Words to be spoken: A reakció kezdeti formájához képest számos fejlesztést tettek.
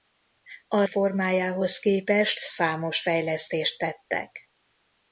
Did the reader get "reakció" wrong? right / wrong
wrong